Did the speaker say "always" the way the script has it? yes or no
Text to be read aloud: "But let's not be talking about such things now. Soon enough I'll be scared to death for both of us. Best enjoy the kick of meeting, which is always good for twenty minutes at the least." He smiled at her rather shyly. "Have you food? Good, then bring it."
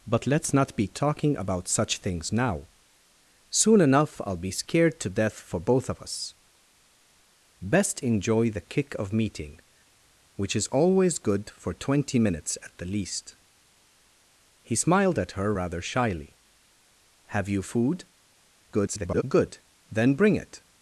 yes